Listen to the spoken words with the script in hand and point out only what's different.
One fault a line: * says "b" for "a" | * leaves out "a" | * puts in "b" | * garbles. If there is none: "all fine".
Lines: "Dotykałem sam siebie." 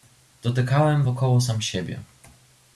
* puts in "wokoło"